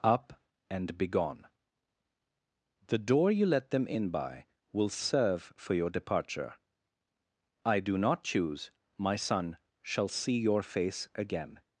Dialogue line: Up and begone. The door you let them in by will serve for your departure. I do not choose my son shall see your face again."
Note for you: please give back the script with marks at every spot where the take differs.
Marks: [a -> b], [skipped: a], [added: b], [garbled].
Up and begone. The door you let them in by will serve for your departure. I do not choose my son shall see your face again."